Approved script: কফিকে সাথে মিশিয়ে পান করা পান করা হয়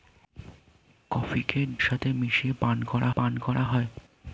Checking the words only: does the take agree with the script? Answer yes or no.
yes